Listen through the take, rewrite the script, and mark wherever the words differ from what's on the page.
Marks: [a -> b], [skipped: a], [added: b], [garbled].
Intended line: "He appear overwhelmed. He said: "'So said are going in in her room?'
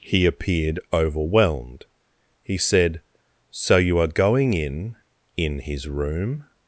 "He [appear -> appeared] overwhelmed. He said: "'So [said -> you] are going in in [her -> his] room?'